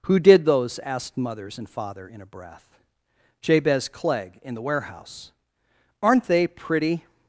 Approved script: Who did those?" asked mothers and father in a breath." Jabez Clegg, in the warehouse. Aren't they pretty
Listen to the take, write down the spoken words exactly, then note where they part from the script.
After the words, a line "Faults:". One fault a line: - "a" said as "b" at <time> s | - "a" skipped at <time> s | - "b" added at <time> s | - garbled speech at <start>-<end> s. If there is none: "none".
Who did those?" asked mothers and father in a breath." Jabez Clegg, in the warehouse. Aren't they pretty
Faults:
none